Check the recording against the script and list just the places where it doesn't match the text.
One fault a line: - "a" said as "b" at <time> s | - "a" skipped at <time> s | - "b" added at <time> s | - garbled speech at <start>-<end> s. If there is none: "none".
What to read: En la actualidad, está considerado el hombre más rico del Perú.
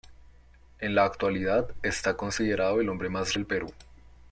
- "rico" skipped at 3.4 s